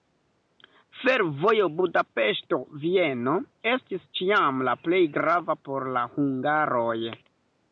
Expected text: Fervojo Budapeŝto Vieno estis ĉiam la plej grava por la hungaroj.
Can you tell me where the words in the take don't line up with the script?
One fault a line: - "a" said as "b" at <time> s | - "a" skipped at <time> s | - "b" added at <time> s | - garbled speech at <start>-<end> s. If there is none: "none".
none